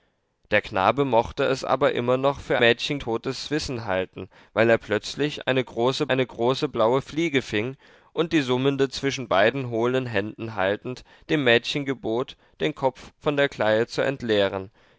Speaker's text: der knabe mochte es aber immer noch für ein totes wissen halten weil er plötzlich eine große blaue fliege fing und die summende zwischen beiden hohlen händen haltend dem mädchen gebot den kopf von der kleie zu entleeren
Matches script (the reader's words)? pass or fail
fail